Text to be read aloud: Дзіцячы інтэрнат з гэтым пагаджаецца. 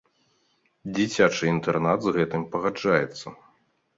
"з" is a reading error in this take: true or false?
false